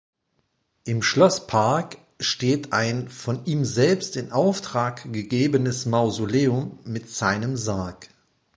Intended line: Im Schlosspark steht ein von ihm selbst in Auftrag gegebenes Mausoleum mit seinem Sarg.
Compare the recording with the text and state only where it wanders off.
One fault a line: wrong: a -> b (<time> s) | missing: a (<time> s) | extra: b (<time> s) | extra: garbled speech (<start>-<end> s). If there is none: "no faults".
no faults